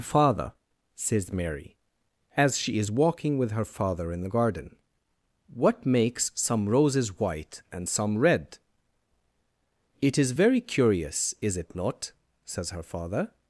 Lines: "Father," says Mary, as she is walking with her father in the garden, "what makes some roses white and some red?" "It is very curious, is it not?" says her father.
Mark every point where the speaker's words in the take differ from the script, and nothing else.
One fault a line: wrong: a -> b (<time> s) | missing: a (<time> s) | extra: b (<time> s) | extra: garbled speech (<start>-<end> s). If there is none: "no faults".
no faults